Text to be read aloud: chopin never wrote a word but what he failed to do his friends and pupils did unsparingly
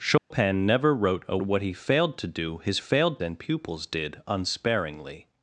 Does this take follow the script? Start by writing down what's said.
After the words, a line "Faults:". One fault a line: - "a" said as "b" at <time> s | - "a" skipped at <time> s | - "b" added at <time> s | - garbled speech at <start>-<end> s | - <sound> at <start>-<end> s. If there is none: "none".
chopin never wrote a what he failed to do his failed and pupils did unsparingly
Faults:
- dropout at 0.2-0.3 s
- "word but" skipped at 1.4 s
- "friends" said as "failed" at 2.8 s